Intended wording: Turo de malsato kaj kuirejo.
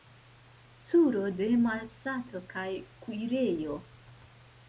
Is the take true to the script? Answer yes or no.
yes